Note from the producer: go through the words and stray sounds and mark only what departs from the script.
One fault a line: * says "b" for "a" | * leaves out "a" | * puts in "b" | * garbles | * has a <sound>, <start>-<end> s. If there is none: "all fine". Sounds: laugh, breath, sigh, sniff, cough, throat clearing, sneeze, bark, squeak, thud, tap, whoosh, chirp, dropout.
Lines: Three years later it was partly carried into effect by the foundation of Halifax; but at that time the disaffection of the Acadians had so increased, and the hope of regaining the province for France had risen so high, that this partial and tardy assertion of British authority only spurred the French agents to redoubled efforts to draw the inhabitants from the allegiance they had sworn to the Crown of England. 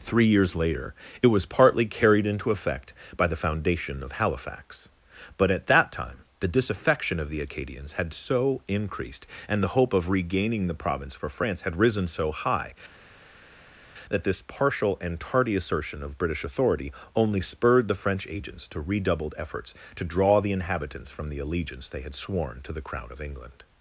all fine